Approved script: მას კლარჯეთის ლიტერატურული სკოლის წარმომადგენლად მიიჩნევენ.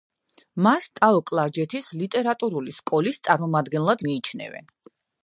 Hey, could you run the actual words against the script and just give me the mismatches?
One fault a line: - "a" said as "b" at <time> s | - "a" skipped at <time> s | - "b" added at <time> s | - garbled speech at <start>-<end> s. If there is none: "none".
- "ტაო" added at 1.0 s